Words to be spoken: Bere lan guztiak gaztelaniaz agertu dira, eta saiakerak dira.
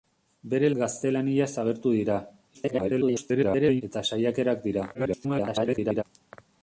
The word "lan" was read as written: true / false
false